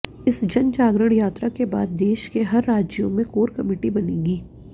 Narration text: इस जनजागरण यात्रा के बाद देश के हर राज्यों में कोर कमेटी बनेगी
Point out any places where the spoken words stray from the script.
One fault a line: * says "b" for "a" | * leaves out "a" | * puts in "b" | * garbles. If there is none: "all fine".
all fine